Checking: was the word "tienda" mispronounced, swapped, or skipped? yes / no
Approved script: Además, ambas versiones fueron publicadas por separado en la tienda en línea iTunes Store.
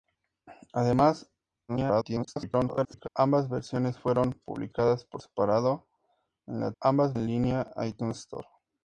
yes